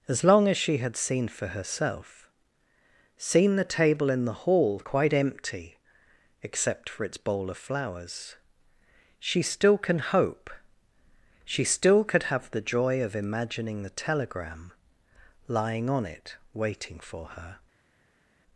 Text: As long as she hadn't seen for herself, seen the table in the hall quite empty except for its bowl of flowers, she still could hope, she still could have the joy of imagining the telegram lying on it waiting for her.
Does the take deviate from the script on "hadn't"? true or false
true